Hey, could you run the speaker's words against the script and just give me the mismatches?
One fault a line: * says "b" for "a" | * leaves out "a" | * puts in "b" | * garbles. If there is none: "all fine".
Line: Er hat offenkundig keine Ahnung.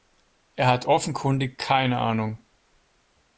all fine